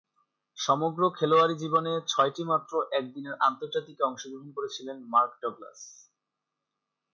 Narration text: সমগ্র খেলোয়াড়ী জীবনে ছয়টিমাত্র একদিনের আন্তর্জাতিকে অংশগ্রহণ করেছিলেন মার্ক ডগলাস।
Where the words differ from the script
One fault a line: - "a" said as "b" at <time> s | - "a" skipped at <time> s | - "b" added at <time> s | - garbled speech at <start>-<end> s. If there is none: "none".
none